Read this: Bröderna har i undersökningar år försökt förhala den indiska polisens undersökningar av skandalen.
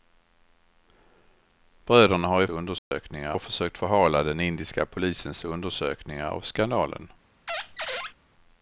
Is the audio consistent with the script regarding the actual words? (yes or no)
yes